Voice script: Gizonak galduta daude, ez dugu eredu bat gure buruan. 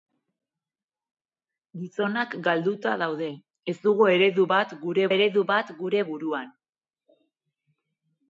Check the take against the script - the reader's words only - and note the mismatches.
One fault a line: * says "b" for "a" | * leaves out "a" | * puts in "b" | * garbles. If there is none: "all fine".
* puts in "eredu bat gure"